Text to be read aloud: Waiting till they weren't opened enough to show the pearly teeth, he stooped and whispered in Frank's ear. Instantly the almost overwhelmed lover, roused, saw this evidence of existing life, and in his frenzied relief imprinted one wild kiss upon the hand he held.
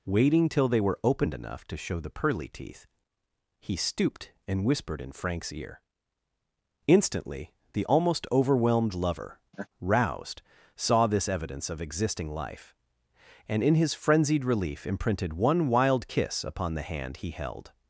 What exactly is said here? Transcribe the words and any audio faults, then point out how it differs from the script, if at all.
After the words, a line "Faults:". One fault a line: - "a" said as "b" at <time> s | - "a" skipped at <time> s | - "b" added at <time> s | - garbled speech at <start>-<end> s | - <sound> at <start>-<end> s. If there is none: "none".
Waiting till they were opened enough to show the pearly teeth, he stooped and whispered in Frank's ear. Instantly the almost overwhelmed lover, roused, saw this evidence of existing life, and in his frenzied relief imprinted one wild kiss upon the hand he held.
Faults:
- "weren't" said as "were" at 0.8 s
- laugh at 9.5-9.7 s